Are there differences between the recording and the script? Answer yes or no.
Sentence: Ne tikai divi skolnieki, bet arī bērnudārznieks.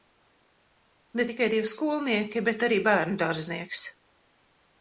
no